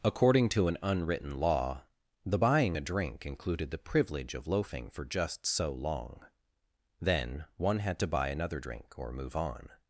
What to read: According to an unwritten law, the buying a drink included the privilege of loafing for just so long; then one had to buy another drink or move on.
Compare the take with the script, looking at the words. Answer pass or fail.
pass